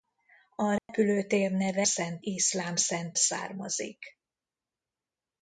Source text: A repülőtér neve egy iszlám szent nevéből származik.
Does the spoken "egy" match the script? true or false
false